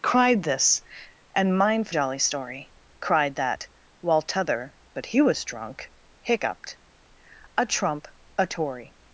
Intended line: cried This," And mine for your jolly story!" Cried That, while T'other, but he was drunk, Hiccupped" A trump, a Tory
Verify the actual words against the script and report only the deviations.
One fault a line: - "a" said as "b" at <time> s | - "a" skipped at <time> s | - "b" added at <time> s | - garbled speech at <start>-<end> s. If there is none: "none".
- "your" skipped at 1.9 s